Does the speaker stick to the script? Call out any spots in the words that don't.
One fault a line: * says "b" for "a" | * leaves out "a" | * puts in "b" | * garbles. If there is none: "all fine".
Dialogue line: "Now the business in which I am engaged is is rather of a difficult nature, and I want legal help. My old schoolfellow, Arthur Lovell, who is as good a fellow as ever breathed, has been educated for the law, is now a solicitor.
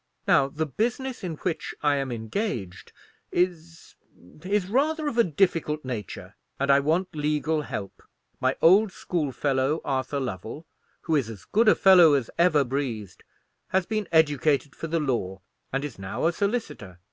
* puts in "and"